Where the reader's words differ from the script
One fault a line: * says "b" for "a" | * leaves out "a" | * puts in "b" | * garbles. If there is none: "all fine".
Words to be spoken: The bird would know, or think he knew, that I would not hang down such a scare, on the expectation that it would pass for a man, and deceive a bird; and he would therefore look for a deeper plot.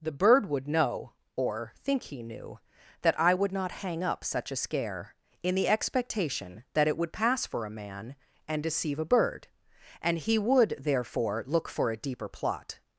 * says "up" for "down"
* says "in" for "on"